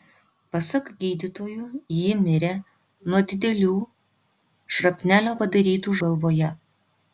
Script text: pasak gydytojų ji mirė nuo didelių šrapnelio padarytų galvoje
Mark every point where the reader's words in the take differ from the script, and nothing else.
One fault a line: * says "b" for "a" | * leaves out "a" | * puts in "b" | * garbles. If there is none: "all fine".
all fine